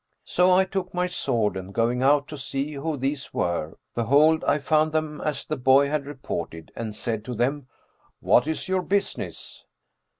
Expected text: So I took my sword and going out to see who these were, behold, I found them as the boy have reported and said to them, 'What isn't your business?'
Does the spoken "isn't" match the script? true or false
false